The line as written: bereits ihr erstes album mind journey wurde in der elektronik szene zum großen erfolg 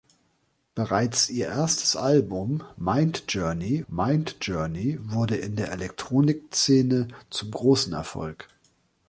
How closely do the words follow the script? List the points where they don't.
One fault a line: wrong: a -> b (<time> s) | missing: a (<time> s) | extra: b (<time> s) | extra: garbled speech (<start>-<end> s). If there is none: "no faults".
extra: mind journey (3.9 s)